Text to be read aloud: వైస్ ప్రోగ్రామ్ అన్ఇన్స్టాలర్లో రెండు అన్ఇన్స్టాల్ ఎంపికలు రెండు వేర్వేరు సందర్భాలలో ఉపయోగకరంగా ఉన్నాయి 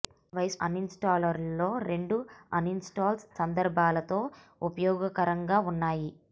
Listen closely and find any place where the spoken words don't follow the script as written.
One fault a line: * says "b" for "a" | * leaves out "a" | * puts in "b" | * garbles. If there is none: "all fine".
* leaves out "ప్రోగ్రామ్"
* leaves out "ఎంపికలు రెండు వేర్వేరు"